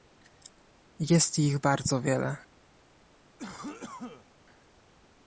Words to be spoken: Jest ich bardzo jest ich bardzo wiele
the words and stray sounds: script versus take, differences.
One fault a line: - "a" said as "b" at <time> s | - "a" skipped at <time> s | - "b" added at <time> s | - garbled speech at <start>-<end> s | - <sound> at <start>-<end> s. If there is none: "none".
- "jest ich bardzo" skipped at 2.0 s
- cough at 3.4-4.3 s